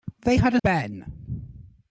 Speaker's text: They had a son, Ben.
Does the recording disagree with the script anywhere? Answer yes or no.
yes